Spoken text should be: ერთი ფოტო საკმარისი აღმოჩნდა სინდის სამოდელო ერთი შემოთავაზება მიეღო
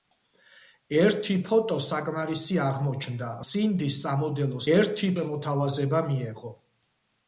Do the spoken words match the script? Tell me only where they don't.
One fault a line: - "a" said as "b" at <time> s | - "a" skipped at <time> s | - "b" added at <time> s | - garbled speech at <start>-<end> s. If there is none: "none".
none